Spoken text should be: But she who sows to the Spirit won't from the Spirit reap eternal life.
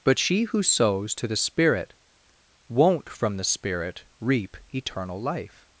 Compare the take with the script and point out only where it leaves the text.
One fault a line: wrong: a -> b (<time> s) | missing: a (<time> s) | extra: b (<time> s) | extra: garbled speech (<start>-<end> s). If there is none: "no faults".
no faults